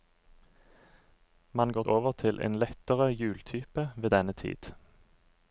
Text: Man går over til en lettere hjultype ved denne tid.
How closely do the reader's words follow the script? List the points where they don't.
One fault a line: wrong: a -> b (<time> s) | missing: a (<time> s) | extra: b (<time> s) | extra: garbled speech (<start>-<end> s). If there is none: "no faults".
no faults